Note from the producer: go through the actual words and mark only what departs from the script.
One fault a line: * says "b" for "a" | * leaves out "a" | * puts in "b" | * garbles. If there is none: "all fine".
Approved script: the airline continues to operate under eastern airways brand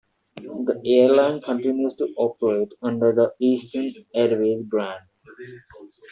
* puts in "the"